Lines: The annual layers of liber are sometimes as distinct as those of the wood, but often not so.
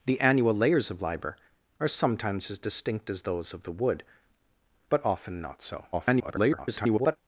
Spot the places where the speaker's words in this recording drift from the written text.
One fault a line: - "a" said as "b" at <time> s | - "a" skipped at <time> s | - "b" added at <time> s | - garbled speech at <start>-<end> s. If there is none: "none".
- garbled speech at 5.9-7.2 s